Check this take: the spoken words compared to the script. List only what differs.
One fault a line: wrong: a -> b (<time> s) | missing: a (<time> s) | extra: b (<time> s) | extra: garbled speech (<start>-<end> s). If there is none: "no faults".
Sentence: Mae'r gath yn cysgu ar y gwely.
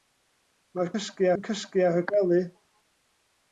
wrong: gath -> cysgu (0.9 s)